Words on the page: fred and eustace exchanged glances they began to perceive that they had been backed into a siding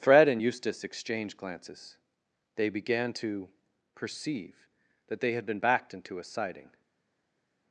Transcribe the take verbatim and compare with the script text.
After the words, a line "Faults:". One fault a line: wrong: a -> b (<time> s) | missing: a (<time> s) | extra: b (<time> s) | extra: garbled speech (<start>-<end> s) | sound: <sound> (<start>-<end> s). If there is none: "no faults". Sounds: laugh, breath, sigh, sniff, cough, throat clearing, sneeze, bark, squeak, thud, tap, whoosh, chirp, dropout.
fred and eustace exchanged glances they began to perceive that they had been backed into a siding
Faults:
no faults